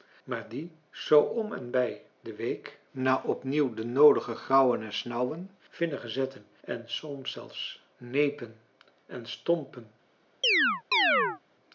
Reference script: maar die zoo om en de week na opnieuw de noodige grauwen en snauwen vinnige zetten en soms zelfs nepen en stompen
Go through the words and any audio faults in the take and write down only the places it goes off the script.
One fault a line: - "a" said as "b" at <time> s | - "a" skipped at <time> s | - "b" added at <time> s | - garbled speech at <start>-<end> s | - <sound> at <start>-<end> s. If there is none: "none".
- "bij" added at 1.7 s
- chirp at 10.4-11.4 s